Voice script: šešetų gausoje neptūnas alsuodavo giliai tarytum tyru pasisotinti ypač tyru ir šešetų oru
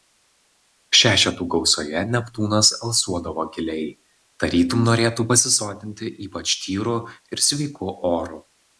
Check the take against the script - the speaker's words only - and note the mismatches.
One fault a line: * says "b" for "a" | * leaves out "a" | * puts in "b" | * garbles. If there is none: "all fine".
* says "norėtų" for "tyru"
* says "sveiku" for "šešetų"